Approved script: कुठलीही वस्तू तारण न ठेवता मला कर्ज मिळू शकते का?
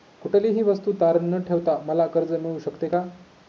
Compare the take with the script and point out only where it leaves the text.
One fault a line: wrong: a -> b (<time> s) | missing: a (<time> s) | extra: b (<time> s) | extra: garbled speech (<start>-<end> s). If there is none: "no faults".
no faults